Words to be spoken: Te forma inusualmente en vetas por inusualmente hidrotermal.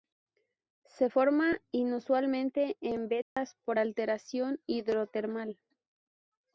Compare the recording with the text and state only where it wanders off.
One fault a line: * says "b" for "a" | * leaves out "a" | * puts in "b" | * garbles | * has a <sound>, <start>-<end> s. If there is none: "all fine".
* says "Se" for "Te"
* has a dropout, 3.2-3.4 s
* says "alteración" for "inusualmente"